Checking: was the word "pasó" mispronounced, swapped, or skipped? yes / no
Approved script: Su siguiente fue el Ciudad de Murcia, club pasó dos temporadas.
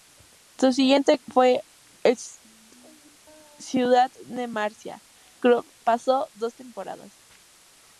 no